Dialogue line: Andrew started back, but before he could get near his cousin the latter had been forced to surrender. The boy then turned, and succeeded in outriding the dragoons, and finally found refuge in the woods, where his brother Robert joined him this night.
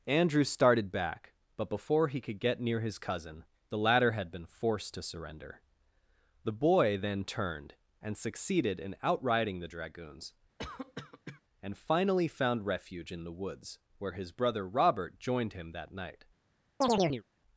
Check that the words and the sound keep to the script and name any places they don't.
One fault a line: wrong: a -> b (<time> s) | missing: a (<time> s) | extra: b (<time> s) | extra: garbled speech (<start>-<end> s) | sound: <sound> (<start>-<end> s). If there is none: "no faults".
sound: cough (10.6-11.4 s)
wrong: this -> that (15.7 s)
sound: chirp (16.8-17.2 s)